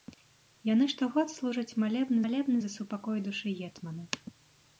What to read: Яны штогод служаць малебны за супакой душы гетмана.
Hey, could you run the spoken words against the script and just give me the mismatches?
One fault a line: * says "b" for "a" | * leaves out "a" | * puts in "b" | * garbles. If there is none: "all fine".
* puts in "малебны"